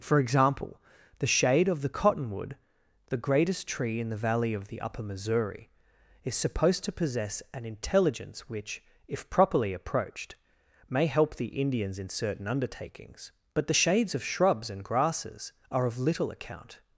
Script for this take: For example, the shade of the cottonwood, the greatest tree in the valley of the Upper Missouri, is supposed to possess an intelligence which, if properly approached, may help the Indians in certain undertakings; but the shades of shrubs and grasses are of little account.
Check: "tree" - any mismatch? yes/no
no